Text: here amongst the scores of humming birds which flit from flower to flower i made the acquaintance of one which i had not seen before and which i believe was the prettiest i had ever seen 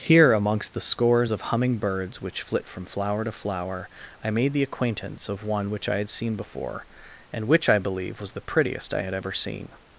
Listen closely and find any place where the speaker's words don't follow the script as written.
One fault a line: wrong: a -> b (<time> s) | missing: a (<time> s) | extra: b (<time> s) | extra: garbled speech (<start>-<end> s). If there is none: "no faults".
missing: not (6.1 s)